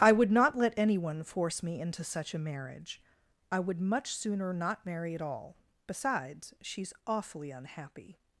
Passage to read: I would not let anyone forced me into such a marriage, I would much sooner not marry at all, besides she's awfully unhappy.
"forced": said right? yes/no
no